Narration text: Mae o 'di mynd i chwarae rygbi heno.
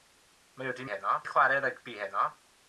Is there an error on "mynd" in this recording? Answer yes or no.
yes